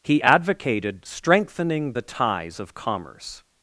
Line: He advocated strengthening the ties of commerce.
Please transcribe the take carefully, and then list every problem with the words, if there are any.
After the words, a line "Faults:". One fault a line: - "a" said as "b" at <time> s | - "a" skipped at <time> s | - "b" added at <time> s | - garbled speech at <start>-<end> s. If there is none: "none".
He advocated strengthening the ties of commerce.
Faults:
none